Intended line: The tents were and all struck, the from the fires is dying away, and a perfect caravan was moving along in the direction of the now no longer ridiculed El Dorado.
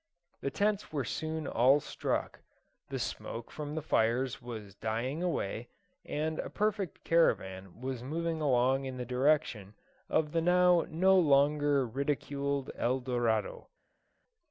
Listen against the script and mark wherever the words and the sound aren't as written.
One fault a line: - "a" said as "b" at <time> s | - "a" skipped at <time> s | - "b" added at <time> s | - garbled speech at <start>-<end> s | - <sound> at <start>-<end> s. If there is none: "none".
- "and" said as "soon" at 1.1 s
- "smoke" added at 3.0 s
- "is" said as "was" at 4.4 s